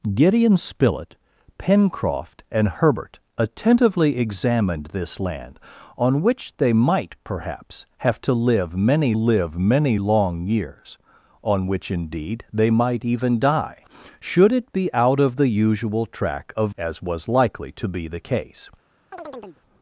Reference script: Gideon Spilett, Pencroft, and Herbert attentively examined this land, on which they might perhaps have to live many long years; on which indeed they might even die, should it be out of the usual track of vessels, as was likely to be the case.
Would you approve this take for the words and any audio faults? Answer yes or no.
no